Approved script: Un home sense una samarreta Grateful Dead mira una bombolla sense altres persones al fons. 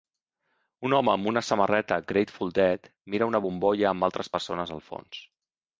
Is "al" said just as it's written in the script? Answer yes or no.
yes